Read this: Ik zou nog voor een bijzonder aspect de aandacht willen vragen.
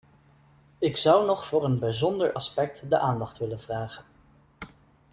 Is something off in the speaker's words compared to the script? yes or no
no